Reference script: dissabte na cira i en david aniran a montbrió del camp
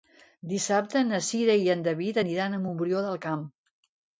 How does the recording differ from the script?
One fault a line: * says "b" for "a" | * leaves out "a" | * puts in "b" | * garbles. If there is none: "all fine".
all fine